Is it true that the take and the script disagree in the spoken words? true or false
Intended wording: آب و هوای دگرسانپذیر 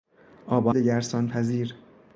true